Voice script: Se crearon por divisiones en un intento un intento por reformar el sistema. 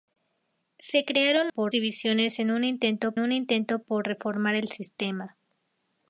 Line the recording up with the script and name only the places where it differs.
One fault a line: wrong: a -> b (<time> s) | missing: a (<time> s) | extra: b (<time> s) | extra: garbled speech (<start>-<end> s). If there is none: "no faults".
no faults